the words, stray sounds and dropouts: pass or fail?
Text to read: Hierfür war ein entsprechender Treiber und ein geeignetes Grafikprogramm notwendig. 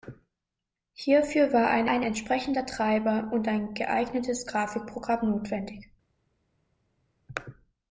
fail